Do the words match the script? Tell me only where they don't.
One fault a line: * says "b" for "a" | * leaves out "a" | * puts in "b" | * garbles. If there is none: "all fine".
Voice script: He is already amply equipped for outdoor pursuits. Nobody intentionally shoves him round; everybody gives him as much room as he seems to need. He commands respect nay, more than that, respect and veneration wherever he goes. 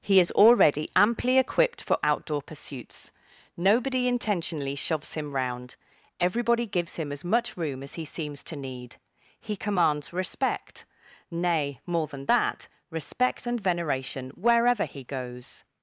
all fine